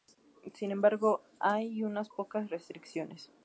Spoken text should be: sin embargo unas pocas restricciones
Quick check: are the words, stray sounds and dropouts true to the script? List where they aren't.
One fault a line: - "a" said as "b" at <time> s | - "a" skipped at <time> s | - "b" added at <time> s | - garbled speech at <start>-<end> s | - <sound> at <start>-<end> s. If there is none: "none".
- "hay" added at 1.4 s